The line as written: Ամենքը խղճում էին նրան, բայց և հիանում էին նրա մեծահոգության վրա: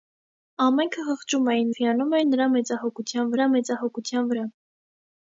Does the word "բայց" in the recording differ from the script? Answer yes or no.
yes